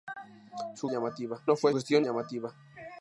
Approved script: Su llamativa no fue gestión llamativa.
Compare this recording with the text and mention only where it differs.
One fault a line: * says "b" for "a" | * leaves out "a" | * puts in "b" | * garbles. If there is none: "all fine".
all fine